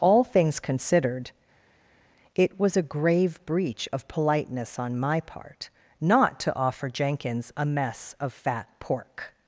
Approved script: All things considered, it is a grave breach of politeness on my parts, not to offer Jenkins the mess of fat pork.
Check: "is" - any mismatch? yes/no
yes